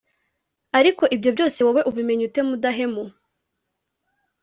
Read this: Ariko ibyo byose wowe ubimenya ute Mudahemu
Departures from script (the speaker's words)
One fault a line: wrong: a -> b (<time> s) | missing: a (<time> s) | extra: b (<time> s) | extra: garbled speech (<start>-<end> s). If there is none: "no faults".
no faults